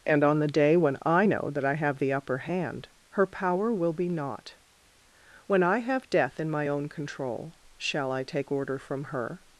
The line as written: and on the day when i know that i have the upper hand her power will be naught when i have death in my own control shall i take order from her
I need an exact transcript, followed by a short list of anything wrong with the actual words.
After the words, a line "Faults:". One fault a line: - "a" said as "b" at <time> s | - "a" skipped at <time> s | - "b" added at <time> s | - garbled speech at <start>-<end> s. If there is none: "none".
and on the day when i know that i have the upper hand her power will be naught when i have death in my own control shall i take order from her
Faults:
none